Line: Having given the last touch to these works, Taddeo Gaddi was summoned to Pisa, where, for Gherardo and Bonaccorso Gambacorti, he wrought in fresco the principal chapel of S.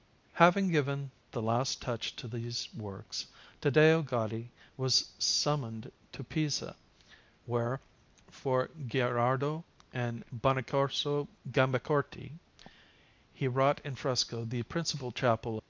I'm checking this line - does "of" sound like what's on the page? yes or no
no